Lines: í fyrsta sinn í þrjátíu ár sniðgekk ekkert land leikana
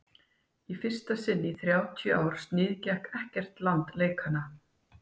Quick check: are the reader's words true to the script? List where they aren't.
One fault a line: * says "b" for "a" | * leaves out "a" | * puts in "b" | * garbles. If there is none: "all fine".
all fine